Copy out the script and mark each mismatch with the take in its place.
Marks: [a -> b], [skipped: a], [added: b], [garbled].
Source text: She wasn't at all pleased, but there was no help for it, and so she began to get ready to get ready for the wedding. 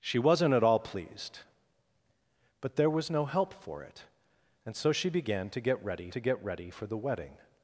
She wasn't at all pleased, but there was no help for it, and so she began to get ready to get ready for the wedding.